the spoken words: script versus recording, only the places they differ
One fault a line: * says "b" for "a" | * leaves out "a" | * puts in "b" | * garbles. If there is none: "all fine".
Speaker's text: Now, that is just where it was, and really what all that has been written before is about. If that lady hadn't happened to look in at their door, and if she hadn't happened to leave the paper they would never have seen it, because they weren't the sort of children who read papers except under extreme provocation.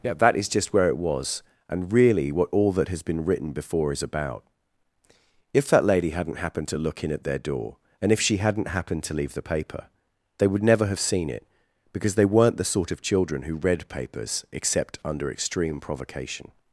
* says "Yeah" for "Now"